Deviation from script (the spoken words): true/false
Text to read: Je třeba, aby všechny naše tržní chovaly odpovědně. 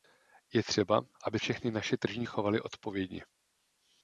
false